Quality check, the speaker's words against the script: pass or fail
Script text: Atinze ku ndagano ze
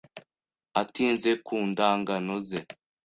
pass